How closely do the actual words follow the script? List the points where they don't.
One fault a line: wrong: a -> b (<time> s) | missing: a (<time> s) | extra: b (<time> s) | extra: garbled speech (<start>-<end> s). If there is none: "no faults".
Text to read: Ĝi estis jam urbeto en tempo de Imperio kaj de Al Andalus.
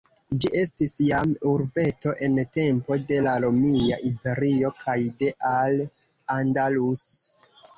extra: la Romia (3.3 s)